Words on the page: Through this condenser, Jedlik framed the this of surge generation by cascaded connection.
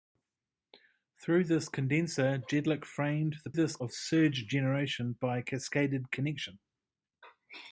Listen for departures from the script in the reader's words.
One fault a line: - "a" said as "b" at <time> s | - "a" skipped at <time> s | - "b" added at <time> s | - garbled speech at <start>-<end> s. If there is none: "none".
none